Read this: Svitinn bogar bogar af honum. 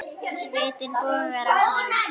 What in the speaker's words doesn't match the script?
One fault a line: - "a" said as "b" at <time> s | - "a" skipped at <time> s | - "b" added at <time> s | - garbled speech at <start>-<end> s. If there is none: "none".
- "bogar" skipped at 1.5 s